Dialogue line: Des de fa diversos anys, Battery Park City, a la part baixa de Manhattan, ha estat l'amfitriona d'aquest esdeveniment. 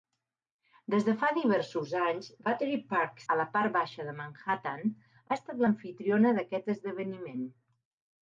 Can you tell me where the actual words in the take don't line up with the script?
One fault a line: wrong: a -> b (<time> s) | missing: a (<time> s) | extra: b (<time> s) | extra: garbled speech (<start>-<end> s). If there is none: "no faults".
missing: City (3.2 s)